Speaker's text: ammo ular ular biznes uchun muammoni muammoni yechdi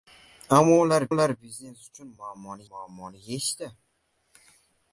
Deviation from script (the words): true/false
false